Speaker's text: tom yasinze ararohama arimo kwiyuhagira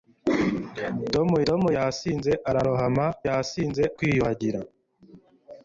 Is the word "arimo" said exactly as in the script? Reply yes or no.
no